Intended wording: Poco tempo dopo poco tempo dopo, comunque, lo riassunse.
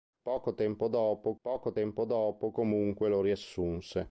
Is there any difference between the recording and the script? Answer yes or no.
no